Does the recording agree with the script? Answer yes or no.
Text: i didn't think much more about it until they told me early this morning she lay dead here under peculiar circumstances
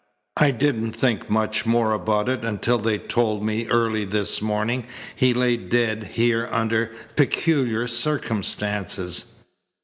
no